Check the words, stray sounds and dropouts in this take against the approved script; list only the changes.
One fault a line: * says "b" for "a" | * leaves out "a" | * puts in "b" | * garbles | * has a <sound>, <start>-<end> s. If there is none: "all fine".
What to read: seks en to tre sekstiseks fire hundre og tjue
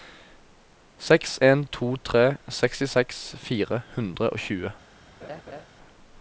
* has a laugh, 5.2-5.7 s